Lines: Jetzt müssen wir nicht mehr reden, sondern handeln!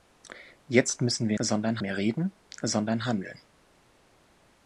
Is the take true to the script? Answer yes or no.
no